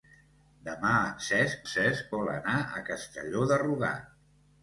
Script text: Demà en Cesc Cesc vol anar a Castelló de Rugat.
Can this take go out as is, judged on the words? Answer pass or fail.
pass